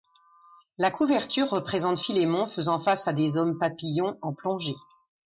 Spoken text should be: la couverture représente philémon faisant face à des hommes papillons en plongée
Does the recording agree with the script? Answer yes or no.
yes